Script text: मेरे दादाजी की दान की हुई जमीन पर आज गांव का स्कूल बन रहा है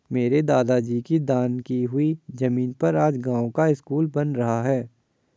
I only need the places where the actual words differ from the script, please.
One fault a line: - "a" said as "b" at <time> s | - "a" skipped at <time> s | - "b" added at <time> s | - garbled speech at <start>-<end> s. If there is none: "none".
none